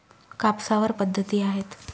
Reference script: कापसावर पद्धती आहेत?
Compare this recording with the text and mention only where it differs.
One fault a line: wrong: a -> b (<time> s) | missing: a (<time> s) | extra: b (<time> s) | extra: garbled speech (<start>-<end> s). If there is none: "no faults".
no faults